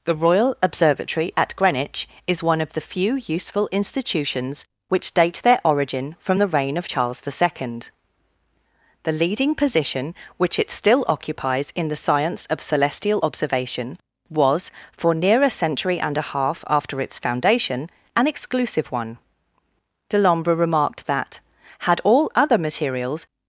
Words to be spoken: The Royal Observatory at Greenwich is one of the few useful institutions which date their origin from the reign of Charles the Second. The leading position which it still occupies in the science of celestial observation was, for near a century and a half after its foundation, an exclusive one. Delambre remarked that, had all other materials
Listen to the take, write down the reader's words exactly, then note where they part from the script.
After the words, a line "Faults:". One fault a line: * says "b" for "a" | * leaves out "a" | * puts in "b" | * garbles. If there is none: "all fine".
The Royal Observatory at Greenwich is one of the few useful institutions which date their origin from the reign of Charles the Second. The leading position which it still occupies in the science of celestial observation was, for near a century and a half after its foundation, an exclusive one. Delambre remarked that, had all other materials
Faults:
all fine